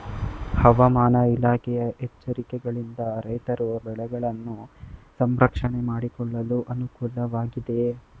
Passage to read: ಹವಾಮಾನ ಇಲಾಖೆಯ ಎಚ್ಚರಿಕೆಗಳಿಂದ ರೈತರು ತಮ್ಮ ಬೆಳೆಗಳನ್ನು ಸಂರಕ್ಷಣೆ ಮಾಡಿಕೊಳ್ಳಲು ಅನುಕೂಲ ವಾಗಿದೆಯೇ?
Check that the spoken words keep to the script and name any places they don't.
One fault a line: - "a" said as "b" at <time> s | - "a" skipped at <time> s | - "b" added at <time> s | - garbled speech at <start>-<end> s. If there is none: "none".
- "ತಮ್ಮ" skipped at 3.7 s